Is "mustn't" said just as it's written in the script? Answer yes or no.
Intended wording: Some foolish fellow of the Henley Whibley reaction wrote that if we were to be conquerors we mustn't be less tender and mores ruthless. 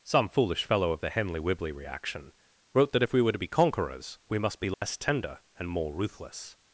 no